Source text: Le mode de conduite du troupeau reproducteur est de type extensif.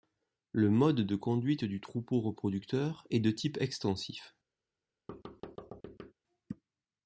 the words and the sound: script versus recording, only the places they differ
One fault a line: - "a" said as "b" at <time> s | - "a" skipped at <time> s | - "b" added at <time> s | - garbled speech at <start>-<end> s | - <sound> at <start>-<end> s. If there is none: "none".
- thud at 5.1-6.1 s